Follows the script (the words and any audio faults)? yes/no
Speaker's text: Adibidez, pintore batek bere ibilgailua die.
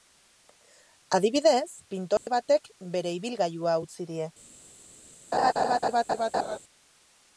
no